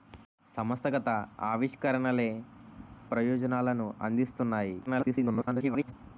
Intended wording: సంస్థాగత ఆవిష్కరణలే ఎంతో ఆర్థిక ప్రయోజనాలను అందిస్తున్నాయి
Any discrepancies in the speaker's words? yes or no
yes